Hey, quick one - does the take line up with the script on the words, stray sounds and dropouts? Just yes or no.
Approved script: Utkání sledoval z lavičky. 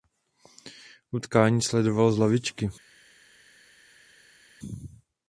yes